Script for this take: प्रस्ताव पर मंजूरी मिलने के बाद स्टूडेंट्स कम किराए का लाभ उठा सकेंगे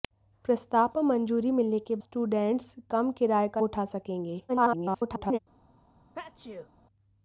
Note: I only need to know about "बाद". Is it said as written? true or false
false